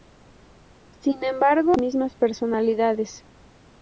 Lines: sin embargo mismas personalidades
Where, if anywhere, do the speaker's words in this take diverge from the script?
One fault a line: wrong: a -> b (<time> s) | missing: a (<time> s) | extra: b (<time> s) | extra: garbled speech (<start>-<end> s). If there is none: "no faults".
no faults